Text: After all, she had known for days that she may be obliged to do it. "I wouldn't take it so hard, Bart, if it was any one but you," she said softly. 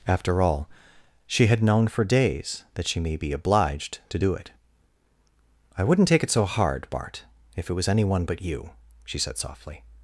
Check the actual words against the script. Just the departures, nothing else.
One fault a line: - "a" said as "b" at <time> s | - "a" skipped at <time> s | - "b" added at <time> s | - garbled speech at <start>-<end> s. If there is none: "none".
none